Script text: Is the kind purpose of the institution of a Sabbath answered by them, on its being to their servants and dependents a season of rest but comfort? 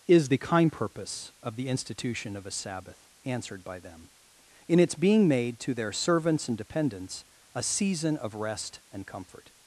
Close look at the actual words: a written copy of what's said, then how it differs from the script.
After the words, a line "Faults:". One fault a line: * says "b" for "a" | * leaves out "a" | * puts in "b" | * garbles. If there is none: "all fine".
Is the kind purpose of the institution of a Sabbath answered by them, in its being made to their servants and dependents a season of rest and comfort?
Faults:
* says "in" for "on"
* puts in "made"
* says "and" for "but"